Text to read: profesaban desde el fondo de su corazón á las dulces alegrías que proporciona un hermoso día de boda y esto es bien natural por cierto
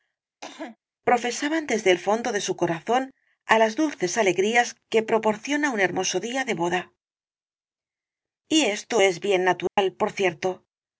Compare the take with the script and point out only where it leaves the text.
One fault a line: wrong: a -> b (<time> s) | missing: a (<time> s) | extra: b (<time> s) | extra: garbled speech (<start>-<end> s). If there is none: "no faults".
no faults